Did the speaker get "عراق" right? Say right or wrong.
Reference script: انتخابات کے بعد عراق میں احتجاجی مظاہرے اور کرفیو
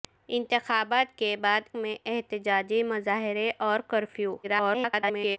wrong